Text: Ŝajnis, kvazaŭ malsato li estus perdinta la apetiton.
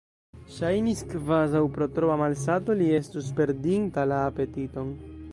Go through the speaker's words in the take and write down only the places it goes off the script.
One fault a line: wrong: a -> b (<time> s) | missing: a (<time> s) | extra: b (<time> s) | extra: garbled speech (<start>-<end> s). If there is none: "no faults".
extra: pro troa (1.8 s)